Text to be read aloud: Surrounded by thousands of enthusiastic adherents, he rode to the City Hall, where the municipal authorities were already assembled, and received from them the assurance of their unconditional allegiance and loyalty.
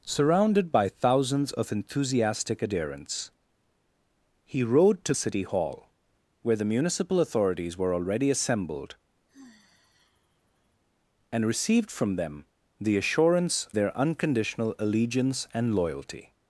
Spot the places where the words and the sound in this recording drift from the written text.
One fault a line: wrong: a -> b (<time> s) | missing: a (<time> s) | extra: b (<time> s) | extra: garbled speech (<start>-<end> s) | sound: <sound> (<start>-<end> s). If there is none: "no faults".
missing: the (5.1 s)
sound: sigh (9.3-10.8 s)
missing: of (13.7 s)